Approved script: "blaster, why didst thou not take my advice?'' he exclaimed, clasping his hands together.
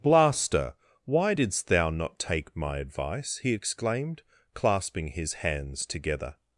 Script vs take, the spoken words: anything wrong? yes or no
no